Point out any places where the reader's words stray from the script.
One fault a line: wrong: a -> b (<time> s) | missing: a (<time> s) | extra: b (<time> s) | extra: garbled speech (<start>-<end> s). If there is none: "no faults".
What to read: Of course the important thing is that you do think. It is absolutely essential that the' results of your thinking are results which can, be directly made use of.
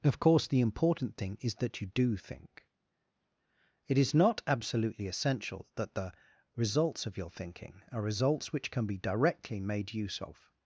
extra: not (4.1 s)